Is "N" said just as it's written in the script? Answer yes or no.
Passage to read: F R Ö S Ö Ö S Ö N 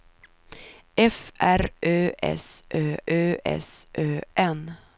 yes